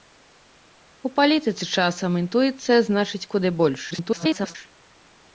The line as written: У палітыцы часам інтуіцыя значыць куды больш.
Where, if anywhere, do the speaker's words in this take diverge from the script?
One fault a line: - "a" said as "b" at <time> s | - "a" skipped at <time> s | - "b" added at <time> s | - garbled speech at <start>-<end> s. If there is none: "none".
- garbled speech at 3.9-4.6 s